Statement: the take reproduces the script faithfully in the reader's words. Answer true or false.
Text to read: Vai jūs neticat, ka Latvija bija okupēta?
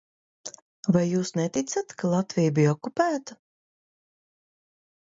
true